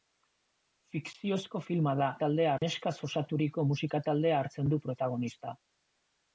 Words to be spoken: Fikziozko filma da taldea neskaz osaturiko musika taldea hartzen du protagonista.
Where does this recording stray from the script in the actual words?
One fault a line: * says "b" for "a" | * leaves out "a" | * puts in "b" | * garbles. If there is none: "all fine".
all fine